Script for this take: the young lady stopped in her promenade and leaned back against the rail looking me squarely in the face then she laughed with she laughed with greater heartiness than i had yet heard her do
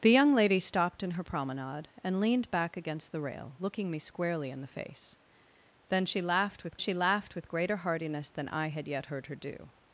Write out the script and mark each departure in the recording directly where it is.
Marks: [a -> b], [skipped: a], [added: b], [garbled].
the young lady stopped in her promenade and leaned back against the rail looking me squarely in the face then she laughed with she laughed with greater heartiness than i had yet heard her do